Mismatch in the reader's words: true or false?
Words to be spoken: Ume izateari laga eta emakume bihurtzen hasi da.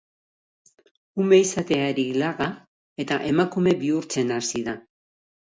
false